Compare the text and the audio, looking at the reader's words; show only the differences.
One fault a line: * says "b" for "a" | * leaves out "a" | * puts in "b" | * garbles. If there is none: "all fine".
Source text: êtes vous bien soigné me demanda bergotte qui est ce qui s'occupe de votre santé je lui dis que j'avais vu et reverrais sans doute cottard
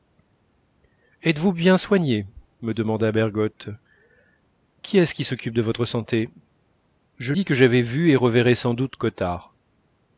* leaves out "lui"